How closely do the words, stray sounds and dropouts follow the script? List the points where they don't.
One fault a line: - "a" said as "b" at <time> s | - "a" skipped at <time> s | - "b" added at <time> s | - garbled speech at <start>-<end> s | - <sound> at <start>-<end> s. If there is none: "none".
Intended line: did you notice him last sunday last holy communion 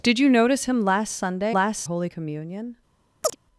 - chirp at 3.2-3.4 s